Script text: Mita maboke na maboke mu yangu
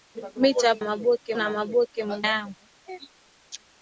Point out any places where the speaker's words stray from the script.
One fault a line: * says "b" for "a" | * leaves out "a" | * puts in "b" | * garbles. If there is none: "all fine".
all fine